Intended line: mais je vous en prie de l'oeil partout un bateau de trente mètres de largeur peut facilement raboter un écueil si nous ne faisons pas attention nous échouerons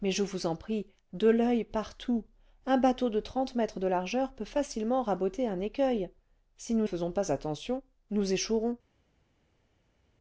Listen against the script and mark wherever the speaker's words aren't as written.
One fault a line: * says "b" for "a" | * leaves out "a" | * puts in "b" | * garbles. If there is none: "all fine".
* leaves out "ne"